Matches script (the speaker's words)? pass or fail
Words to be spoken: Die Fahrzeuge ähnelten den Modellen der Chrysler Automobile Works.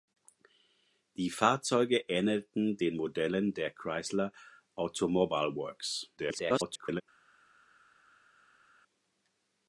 fail